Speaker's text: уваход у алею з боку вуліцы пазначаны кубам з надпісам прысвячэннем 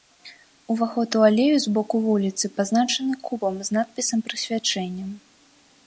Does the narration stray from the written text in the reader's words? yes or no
no